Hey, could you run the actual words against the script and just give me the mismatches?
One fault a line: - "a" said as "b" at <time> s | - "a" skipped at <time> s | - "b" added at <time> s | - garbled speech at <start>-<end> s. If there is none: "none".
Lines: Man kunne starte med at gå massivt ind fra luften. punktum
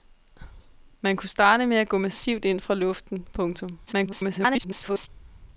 - garbled speech at 3.9-5.1 s